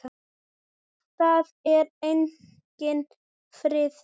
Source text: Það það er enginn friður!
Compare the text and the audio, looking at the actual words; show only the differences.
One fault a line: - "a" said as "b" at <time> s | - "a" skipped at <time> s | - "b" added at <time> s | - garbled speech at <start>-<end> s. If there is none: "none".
- "það" skipped at 1.5 s